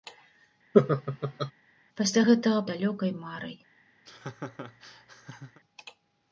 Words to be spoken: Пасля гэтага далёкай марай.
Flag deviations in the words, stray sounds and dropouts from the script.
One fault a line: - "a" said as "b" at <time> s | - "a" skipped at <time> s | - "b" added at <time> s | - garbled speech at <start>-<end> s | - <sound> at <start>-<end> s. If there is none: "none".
- laugh at 0.7-1.5 s
- laugh at 4.1-5.6 s